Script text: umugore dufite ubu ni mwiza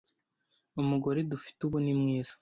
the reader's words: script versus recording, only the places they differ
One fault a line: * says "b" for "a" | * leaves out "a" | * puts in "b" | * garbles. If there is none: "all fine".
all fine